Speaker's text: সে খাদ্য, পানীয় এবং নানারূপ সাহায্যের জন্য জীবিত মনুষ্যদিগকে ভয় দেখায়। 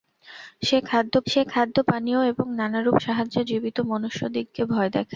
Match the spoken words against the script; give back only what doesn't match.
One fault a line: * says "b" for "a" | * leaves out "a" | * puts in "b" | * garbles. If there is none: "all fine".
* puts in "সে খাদ্য"
* leaves out "জন্য"